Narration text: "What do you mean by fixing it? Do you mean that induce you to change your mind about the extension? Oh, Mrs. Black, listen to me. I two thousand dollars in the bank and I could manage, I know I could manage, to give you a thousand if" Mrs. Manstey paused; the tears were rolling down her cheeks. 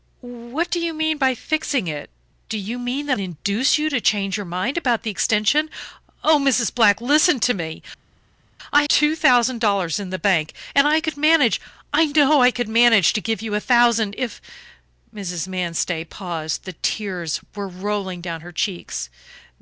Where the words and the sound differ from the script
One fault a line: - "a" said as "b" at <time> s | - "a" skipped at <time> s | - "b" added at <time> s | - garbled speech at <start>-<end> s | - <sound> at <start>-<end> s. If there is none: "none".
none